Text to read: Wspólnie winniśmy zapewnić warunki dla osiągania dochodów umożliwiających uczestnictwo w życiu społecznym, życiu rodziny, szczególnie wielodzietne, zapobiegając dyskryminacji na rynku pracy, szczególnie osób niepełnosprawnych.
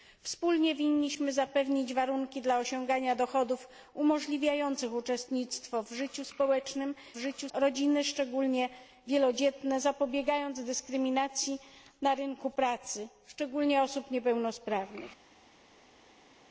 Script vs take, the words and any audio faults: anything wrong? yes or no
no